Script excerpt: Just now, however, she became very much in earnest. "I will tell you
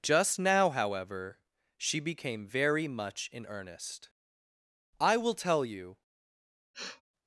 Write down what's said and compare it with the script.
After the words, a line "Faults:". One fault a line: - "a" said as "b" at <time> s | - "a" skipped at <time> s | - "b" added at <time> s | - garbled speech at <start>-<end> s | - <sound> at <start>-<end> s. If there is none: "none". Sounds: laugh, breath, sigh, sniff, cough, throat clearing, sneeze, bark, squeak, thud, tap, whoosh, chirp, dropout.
Just now, however, she became very much in earnest. "I will tell you
Faults:
- sniff at 6.7-7.0 s